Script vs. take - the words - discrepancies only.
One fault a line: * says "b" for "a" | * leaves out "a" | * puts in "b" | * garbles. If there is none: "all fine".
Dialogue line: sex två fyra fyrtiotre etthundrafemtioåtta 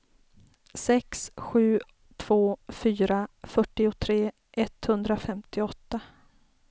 * puts in "sju"